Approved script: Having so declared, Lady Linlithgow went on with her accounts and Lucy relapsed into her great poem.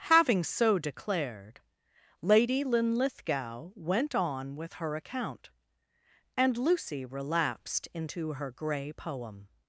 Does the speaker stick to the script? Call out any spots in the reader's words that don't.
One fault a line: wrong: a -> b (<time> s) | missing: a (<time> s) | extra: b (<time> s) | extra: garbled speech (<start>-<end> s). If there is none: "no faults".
wrong: accounts -> account (5.0 s)
wrong: great -> grey (8.5 s)